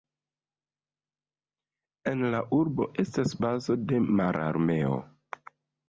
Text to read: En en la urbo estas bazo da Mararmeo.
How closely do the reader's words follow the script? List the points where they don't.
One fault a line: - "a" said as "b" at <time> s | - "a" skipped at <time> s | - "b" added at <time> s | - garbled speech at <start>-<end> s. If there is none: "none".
- "en" skipped at 2.2 s
- "da" said as "de" at 3.9 s